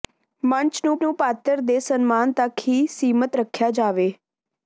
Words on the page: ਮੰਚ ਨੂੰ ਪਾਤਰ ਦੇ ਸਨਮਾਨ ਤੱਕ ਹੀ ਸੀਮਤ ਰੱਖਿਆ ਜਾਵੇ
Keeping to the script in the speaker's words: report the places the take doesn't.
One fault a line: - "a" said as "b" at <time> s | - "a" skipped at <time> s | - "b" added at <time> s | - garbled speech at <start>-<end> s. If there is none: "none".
- "ਨੂੰ" added at 1.0 s